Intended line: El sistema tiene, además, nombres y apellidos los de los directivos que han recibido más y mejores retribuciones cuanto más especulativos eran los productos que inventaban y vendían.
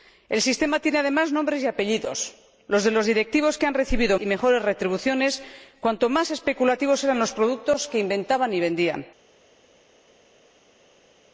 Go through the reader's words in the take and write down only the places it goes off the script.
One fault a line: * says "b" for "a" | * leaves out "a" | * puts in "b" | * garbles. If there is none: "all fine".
* leaves out "más"